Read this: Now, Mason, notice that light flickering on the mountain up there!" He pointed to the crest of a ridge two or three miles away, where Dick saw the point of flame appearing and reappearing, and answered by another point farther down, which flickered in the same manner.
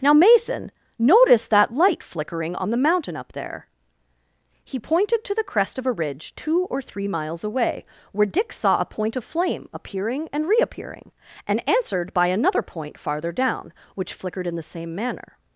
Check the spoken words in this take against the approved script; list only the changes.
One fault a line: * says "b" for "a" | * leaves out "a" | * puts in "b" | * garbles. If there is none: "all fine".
* says "a" for "the"